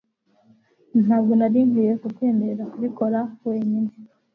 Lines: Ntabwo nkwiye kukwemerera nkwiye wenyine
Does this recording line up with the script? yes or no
no